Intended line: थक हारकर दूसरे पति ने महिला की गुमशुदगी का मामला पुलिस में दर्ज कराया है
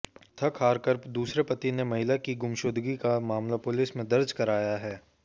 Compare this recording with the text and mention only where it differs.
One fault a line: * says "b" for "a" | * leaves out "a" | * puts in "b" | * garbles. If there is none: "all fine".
all fine